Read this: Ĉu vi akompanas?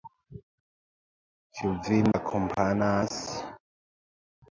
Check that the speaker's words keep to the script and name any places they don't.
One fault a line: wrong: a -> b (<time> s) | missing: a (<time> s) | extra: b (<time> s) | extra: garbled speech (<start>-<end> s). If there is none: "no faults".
no faults